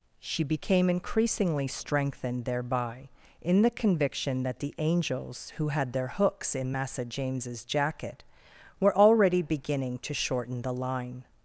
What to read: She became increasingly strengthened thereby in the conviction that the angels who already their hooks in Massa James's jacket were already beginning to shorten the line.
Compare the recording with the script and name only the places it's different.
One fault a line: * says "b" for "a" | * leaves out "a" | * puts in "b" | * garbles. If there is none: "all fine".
* says "had" for "already"